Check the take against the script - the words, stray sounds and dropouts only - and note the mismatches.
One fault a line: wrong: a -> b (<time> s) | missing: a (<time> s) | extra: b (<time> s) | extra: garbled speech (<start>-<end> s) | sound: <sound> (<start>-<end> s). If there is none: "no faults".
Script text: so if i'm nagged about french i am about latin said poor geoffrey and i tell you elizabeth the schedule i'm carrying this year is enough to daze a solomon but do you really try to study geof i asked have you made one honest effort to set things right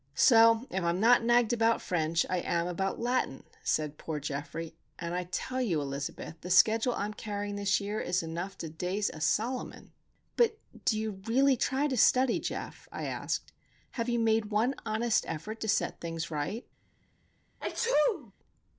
extra: not (1.0 s)
sound: sneeze (17.6-18.3 s)